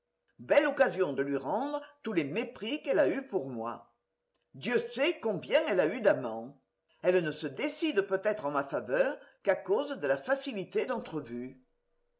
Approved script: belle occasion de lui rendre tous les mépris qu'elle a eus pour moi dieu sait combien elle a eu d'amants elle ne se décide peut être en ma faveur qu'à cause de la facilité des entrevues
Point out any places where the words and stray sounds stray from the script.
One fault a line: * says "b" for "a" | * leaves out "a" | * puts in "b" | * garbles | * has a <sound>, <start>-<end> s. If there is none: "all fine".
* leaves out "des"